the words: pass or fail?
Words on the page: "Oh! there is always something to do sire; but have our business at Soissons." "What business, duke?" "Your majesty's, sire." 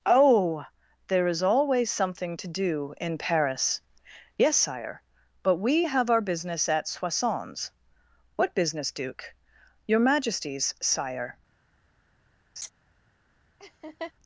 fail